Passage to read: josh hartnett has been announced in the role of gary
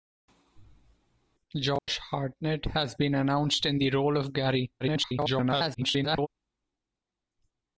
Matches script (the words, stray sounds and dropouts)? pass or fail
fail